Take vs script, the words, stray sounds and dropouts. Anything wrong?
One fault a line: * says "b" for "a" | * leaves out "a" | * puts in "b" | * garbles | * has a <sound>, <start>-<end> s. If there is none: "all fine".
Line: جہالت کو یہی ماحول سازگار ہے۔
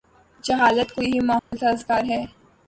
* has a dropout, 1.4-1.5 s